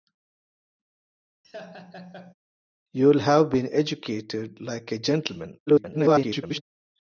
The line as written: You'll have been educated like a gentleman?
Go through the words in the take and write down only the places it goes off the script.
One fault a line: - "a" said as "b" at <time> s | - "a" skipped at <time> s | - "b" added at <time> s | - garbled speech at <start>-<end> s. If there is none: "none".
- garbled speech at 5.7-6.6 s